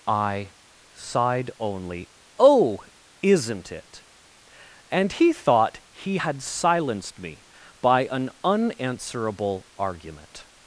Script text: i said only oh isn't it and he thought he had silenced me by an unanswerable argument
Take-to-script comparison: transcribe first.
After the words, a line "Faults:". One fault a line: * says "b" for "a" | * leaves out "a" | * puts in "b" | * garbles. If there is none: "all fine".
i sighed only oh isn't it and he thought he had silenced me by an unanswerable argument
Faults:
* says "sighed" for "said"